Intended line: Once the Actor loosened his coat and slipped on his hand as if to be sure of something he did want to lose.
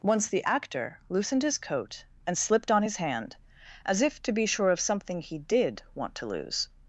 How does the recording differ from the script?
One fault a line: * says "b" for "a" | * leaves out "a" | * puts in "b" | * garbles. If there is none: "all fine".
all fine